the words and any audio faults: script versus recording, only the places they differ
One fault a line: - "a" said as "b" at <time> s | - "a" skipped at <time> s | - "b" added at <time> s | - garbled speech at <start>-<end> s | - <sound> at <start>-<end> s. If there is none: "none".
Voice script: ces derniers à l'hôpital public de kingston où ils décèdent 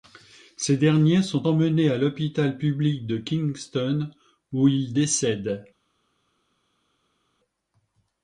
- "sont emmenés" added at 1.2 s